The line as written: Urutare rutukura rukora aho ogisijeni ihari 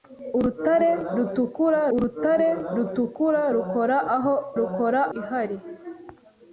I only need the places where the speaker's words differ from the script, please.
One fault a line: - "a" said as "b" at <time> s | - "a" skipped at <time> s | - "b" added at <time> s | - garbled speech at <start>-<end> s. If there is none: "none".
- "urutare rutukura" added at 1.9 s
- "ogisijeni" said as "rukora" at 4.6 s